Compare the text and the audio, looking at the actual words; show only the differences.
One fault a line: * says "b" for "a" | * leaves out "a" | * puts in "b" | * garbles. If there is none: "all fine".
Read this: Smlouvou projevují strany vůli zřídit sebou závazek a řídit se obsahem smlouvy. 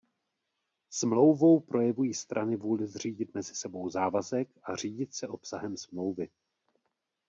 * puts in "mezi"